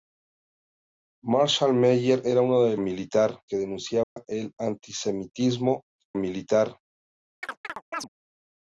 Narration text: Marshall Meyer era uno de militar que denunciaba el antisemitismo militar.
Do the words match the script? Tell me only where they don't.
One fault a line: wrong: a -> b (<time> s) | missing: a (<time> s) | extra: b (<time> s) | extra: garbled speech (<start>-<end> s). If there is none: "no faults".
no faults